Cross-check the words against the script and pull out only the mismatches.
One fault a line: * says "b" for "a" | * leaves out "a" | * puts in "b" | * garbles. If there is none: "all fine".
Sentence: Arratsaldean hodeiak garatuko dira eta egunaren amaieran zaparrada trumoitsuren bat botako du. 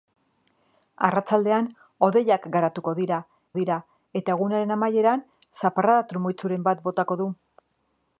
* puts in "dira"